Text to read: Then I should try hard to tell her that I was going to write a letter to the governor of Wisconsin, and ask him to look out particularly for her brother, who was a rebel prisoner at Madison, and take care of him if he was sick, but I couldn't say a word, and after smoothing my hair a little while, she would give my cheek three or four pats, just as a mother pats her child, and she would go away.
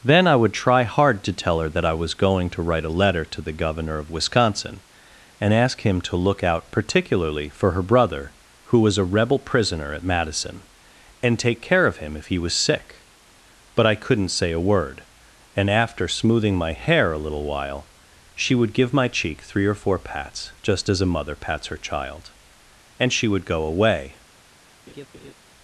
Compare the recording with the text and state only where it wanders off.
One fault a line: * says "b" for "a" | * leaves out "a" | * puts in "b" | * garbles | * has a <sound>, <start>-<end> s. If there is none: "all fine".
* says "would" for "should"
* has a laugh, 24.9-25.3 s